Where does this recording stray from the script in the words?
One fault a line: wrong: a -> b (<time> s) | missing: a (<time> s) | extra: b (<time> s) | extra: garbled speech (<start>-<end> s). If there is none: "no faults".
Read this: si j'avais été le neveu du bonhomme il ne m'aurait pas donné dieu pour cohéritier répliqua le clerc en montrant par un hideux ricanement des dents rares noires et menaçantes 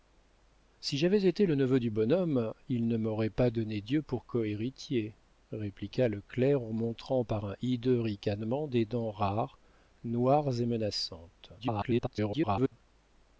extra: garbled speech (11.6-12.7 s)